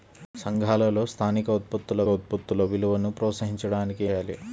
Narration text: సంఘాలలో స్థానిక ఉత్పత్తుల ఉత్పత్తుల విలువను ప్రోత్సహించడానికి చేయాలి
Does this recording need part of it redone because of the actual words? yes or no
no